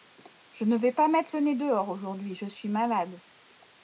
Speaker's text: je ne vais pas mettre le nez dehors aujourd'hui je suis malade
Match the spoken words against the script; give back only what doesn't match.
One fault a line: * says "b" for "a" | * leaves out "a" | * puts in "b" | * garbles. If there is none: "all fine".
all fine